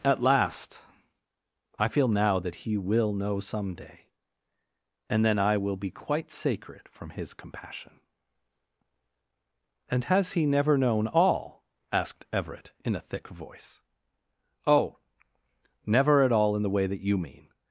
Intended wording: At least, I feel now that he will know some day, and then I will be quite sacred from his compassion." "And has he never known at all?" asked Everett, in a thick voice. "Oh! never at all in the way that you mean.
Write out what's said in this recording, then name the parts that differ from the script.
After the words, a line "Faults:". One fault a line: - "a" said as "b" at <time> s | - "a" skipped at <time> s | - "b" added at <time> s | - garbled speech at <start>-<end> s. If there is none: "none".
At last, I feel now that he will know some day, and then I will be quite sacred from his compassion." "And has he never known all?" asked Everett, in a thick voice. "Oh! never at all in the way that you mean.
Faults:
- "least" said as "last" at 0.2 s
- "at" skipped at 11.1 s